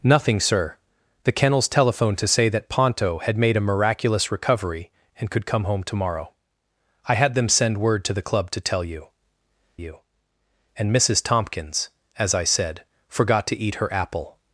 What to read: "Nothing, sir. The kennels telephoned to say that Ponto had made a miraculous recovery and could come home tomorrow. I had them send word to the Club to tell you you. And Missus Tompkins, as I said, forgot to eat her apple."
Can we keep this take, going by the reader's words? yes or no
yes